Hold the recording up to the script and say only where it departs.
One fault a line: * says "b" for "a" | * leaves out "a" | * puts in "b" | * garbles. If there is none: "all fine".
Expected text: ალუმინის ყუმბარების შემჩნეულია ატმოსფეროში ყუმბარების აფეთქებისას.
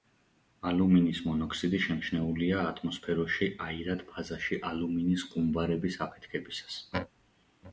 * says "მონოქსიდი" for "ყუმბარების"
* puts in "აირად ფაზაში ალუმინის"